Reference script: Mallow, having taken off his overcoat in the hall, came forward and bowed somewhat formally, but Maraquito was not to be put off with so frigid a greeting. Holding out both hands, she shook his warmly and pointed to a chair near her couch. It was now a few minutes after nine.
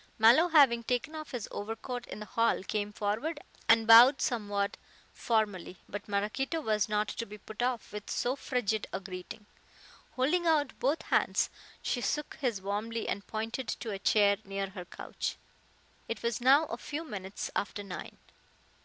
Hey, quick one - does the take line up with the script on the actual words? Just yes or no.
yes